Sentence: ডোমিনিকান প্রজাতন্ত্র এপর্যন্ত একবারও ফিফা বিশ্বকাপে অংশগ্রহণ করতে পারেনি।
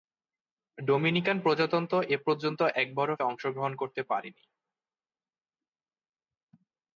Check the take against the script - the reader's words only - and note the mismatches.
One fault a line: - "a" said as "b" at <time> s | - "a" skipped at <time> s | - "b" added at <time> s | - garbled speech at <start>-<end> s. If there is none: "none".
- "ফিফা বিশ্বকাপে" skipped at 3.1 s